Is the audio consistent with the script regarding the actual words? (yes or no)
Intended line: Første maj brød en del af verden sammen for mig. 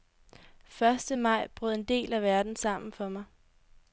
yes